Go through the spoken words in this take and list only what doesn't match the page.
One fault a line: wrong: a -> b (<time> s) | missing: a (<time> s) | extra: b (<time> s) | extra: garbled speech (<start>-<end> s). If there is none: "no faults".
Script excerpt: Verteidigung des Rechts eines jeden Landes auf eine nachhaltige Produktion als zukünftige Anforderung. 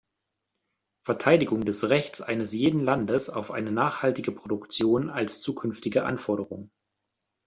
no faults